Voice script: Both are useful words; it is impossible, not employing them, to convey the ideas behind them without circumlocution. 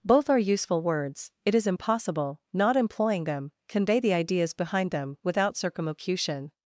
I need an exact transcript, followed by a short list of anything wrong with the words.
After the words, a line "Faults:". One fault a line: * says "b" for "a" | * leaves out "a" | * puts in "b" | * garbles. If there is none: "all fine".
Both are useful words; it is impossible, not employing them, convey the ideas behind them without circumlocution.
Faults:
* leaves out "to"